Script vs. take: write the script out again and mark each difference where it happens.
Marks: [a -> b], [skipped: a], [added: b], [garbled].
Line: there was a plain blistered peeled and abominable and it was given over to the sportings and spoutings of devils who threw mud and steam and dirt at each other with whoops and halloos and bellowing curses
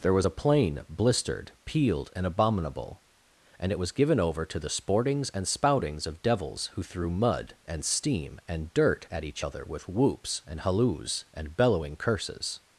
there was a plain blistered peeled and abominable and it was given over to the sportings and spoutings of devils who threw mud and steam and dirt at each other with whoops and halloos and bellowing curses